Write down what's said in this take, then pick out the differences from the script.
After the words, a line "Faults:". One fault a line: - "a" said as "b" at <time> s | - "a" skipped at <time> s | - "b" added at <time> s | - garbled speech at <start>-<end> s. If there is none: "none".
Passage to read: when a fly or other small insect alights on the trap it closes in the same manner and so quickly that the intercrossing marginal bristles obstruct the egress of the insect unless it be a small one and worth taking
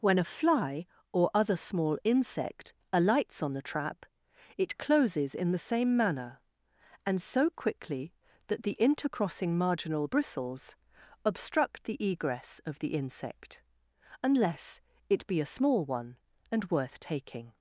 when a fly or other small insect alights on the trap it closes in the same manner and so quickly that the intercrossing marginal bristles obstruct the egress of the insect unless it be a small one and worth taking
Faults:
none